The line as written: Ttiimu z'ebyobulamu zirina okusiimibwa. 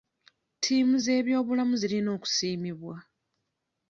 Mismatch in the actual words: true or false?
false